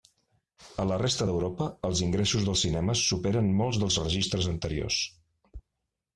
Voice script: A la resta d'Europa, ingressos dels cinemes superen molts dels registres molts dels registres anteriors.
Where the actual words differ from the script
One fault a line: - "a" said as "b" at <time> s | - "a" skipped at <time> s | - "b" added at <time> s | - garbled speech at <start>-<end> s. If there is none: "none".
- "els" added at 1.9 s
- "molts dels registres" skipped at 4.5 s